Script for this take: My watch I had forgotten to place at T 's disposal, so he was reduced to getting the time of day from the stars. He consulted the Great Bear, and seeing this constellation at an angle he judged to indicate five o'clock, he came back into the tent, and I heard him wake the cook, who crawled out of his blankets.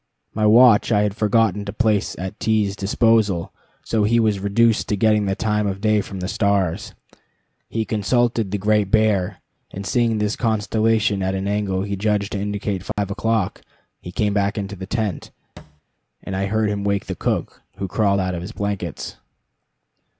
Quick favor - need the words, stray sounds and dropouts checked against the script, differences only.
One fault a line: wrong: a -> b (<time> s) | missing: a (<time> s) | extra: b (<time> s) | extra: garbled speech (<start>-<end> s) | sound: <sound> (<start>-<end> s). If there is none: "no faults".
sound: dropout (12.9-13.0 s)
sound: thud (15.6-15.8 s)